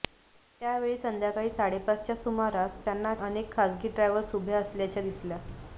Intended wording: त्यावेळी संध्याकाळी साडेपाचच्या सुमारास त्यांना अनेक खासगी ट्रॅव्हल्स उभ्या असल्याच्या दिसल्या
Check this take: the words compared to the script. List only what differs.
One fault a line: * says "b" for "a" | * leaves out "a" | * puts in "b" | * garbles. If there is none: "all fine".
all fine